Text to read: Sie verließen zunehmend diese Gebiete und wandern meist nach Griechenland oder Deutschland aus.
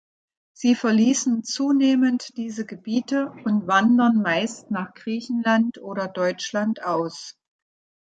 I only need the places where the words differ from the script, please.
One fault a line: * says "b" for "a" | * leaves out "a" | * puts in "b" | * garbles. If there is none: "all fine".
all fine